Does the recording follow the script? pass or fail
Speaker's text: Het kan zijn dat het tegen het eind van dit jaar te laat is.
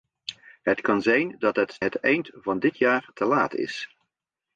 fail